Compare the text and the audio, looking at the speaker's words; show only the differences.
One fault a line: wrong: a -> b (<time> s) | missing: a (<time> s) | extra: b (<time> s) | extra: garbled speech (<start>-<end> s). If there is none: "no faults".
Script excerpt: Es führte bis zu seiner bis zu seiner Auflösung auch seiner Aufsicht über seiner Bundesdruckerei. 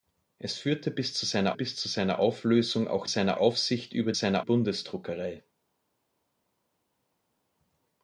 no faults